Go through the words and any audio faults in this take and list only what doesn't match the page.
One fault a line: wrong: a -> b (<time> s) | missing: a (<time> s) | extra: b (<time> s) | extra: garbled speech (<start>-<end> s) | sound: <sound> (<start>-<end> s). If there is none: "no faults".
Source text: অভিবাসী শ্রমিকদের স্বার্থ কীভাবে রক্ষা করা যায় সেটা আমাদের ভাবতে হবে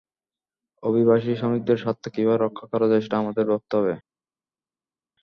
no faults